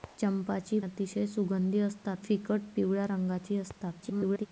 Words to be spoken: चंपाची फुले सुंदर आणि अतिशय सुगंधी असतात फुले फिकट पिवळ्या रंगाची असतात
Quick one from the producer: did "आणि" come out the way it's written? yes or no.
no